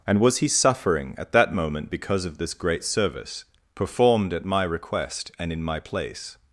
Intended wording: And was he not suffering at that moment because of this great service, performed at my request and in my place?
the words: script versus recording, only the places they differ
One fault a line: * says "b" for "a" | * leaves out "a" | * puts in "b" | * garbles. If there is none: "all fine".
* leaves out "not"